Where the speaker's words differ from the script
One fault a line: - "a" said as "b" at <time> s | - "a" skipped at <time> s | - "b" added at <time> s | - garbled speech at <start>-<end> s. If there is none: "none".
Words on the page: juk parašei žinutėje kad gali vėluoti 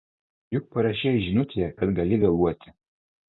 none